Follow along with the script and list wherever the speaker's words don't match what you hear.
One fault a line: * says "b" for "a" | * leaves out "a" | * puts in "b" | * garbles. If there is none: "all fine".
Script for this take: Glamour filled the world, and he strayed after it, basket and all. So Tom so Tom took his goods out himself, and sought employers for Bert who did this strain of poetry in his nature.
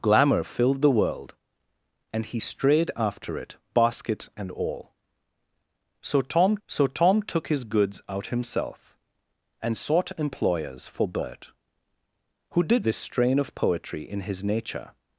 all fine